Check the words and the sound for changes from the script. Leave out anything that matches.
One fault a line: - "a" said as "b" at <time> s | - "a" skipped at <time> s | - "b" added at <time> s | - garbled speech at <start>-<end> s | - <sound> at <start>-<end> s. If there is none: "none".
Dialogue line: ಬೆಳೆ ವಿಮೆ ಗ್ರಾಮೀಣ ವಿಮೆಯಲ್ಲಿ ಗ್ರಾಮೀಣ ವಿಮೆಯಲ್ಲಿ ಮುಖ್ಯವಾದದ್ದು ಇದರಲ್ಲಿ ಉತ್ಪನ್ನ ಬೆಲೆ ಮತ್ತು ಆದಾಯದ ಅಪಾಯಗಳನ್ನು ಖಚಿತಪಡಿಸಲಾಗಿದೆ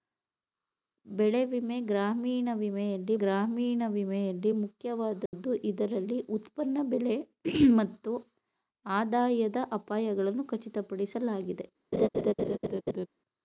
- dropout at 5.3-5.3 s
- laugh at 11.9-13.1 s